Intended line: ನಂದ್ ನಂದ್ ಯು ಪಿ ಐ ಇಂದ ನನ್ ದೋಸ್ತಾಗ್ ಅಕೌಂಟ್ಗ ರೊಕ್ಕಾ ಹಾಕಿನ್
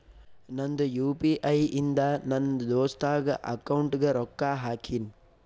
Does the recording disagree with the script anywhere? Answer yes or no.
yes